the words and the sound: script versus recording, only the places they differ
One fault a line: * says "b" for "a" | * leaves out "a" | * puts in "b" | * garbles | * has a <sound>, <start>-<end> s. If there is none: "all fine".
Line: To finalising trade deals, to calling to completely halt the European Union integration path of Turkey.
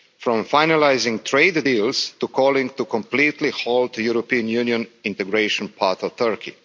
* says "From" for "To"